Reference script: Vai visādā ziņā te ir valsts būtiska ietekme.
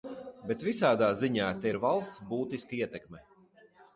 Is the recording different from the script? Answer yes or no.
yes